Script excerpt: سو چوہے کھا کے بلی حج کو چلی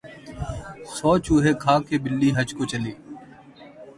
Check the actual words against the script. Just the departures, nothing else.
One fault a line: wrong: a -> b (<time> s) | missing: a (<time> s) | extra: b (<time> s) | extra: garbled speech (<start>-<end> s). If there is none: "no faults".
no faults